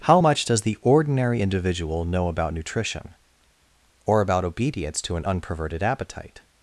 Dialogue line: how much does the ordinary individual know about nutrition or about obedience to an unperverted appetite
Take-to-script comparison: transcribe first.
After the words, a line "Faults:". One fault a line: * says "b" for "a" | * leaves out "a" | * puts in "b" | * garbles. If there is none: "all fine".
how much does the ordinary individual know about nutrition or about obedience to an unperverted appetite
Faults:
all fine